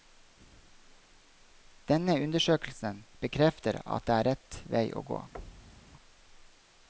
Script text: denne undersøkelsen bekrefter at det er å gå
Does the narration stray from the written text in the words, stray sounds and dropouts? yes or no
yes